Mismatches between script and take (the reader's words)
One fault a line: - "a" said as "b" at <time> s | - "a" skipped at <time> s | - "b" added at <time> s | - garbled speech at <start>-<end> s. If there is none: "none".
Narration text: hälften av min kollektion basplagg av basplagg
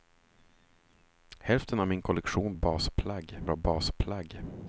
none